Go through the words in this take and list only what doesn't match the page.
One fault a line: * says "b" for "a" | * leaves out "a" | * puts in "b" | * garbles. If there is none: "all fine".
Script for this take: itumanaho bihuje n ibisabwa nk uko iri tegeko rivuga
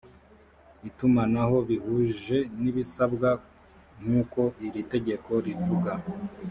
all fine